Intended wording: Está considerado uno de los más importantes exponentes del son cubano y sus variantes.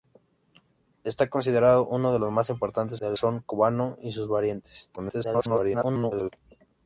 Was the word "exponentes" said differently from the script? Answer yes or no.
yes